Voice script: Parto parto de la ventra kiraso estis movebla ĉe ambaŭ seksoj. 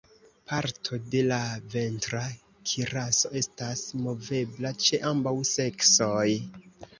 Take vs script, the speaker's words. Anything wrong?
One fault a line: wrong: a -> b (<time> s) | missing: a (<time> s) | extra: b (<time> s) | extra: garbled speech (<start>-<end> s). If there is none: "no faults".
missing: parto (1.0 s)
wrong: estis -> estas (3.4 s)